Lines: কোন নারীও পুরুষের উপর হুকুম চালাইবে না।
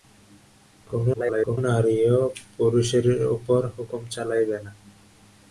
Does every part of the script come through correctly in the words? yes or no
no